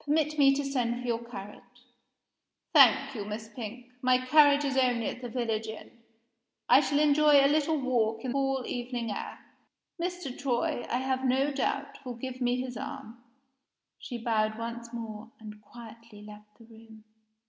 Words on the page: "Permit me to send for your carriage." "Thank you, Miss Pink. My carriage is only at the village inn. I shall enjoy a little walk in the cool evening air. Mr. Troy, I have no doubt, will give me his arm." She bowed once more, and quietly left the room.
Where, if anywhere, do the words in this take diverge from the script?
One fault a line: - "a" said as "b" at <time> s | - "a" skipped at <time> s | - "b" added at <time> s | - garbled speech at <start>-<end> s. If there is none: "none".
- "the" skipped at 8.3 s